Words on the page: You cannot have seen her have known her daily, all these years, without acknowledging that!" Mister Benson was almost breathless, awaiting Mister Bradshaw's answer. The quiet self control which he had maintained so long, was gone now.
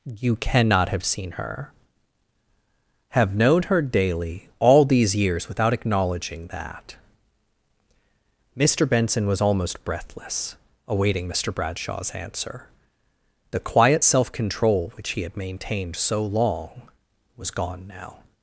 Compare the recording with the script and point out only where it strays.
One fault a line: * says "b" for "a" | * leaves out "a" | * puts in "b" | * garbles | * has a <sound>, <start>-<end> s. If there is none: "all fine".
all fine